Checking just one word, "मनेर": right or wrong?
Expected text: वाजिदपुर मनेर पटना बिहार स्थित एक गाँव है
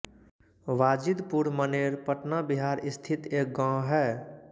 right